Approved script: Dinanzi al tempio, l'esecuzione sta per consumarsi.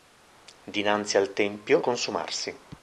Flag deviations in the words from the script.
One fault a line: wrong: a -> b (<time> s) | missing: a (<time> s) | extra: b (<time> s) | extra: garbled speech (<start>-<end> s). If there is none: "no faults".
missing: l'esecuzione sta per (1.8 s)